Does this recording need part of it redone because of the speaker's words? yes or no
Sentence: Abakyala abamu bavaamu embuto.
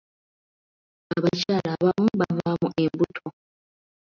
no